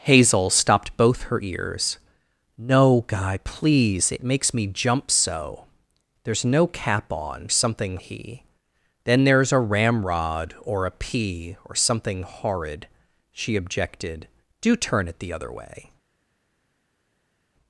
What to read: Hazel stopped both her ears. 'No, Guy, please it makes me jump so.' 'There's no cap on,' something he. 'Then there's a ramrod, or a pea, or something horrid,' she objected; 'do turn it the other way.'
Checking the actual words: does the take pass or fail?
pass